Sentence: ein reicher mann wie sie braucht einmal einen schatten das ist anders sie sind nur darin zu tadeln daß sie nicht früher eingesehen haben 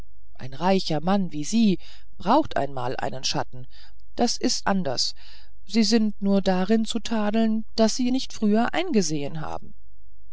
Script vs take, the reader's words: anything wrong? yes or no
no